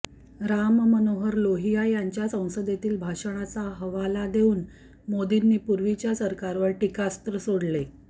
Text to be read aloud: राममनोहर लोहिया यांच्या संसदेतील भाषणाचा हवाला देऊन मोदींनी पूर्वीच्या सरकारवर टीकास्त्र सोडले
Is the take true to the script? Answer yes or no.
yes